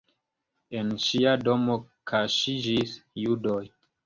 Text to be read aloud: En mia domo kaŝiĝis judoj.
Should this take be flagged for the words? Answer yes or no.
yes